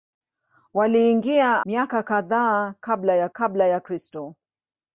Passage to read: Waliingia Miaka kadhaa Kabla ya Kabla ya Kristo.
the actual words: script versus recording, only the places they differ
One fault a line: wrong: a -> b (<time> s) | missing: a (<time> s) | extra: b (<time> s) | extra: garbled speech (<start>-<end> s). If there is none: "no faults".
no faults